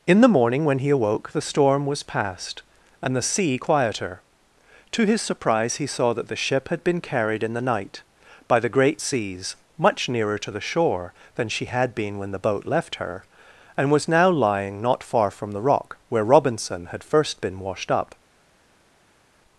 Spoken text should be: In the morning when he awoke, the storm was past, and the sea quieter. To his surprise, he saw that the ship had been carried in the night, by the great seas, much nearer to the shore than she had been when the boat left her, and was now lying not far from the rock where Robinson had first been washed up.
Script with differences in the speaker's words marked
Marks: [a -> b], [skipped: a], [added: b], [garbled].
In the morning when he awoke, the storm was past, and the sea quieter. To his surprise, he saw that the ship had been carried in the night, by the great seas, much nearer to the shore than she had been when the boat left her, and was now lying not far from the rock where Robinson had first been washed up.